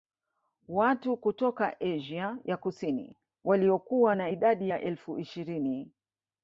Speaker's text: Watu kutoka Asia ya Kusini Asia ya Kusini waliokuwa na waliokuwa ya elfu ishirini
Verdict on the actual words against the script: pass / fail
fail